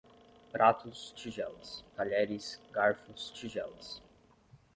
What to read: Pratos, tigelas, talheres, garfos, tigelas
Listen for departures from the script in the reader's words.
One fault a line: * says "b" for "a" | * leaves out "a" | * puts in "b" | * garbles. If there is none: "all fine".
all fine